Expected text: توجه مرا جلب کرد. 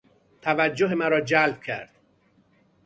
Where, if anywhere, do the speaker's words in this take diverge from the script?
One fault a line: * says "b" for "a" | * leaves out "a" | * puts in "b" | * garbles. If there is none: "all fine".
all fine